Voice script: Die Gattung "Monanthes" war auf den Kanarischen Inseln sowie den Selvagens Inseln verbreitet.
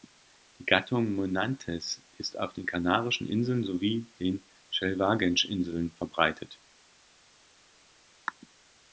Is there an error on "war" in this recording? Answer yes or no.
yes